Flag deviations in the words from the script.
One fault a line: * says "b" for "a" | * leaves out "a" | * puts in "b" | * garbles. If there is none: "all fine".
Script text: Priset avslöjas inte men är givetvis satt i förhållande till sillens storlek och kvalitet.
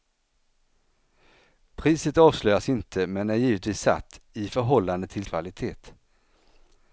* leaves out "sillens storlek och"